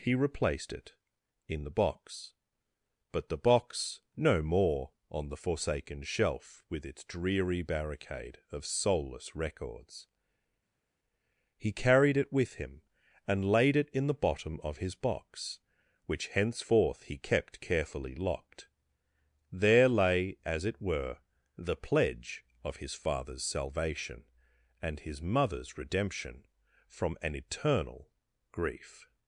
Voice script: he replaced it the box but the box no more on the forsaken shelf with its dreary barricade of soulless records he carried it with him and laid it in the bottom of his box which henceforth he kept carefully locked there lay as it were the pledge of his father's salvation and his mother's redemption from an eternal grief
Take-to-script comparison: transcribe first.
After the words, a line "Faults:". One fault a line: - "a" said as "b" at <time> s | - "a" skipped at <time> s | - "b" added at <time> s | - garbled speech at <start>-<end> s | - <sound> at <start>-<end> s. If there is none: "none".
he replaced it in the box but the box no more on the forsaken shelf with its dreary barricade of soulless records he carried it with him and laid it in the bottom of his box which henceforth he kept carefully locked there lay as it were the pledge of his father's salvation and his mother's redemption from an eternal grief
Faults:
- "in" added at 1.5 s